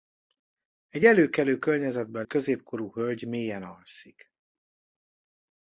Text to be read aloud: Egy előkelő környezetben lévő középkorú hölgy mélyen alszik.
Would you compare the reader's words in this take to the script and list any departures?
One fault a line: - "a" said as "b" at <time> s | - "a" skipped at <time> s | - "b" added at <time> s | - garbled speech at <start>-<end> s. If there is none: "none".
- "lévő" skipped at 2.2 s